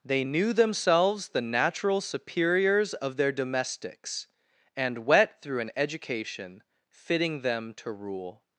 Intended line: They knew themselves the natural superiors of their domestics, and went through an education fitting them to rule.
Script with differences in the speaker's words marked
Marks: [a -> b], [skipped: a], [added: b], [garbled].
They knew themselves the natural superiors of their domestics, and [went -> wet] through an education fitting them to rule.